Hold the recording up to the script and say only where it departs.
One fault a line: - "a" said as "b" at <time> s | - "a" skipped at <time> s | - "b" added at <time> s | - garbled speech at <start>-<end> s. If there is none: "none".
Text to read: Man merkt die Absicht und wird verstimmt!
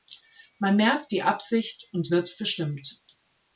none